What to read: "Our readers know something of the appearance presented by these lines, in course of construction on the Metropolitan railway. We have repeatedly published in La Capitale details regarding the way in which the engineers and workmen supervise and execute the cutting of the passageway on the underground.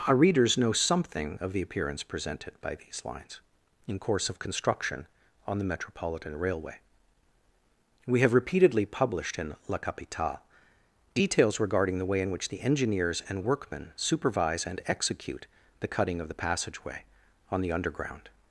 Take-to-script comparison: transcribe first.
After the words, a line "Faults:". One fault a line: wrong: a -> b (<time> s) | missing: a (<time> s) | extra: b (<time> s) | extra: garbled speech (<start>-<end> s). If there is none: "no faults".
"Our readers know something of the appearance presented by these lines, in course of construction on the Metropolitan railway. We have repeatedly published in La Capitale details regarding the way in which the engineers and workmen supervise and execute the cutting of the passageway on the underground.
Faults:
no faults